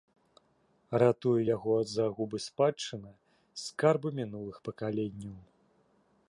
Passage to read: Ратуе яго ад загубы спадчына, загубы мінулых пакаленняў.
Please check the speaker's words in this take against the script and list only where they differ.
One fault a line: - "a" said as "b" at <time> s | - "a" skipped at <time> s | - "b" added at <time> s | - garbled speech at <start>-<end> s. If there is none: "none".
- "загубы" said as "скарбы" at 3.6 s